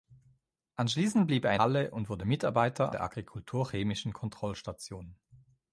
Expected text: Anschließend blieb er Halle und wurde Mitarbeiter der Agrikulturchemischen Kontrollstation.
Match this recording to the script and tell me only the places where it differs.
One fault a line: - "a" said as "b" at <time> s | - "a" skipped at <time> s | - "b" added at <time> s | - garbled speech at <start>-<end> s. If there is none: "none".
none